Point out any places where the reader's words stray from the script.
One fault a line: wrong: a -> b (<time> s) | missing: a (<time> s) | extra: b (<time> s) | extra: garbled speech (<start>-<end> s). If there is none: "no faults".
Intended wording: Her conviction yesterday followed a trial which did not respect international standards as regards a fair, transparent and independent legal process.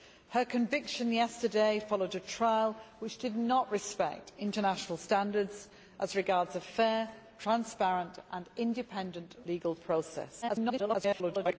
extra: garbled speech (10.4-11.6 s)